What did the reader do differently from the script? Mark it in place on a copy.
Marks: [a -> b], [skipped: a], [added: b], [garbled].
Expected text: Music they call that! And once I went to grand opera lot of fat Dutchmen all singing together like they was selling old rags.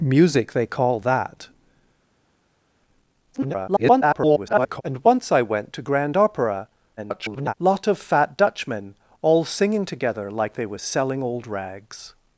Music they call that! [garbled] And once I went to grand opera [garbled] lot of fat Dutchmen all singing together like they was selling old rags.